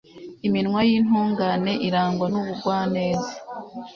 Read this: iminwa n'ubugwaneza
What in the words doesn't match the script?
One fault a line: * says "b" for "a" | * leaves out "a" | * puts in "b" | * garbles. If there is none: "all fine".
* puts in "y'intungane irangwa"